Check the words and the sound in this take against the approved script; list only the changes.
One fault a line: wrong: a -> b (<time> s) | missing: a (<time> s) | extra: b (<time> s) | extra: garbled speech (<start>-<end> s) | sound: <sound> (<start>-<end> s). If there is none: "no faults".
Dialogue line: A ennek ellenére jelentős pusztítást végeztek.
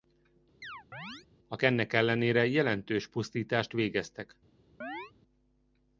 sound: chirp (0.6-1.3 s)
sound: chirp (4.8-5.1 s)